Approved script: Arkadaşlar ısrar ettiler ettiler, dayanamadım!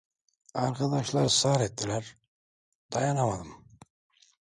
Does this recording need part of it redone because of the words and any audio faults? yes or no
yes